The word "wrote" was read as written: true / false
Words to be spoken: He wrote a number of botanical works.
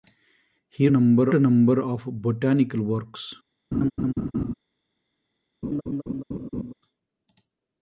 false